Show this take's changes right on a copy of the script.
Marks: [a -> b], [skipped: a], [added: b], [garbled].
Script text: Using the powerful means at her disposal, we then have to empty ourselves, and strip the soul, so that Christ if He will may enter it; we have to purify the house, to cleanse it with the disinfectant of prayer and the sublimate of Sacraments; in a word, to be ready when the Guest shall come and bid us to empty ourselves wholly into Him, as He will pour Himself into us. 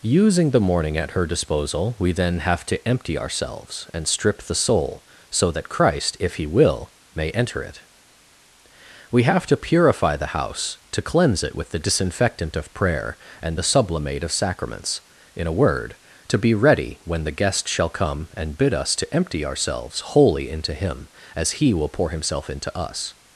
Using the [powerful means -> morning] at her disposal, we then have to empty ourselves, and strip the soul, so that Christ if He will may enter it; we have to purify the house, to cleanse it with the disinfectant of prayer and the sublimate of Sacraments; in a word, to be ready when the Guest shall come and bid us to empty ourselves wholly into Him, as He will pour Himself into us.